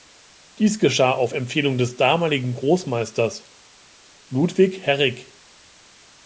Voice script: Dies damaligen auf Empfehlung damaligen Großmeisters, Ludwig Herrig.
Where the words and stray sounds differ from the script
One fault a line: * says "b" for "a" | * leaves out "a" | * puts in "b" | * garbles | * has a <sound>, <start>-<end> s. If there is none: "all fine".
* says "geschah" for "damaligen"
* puts in "des"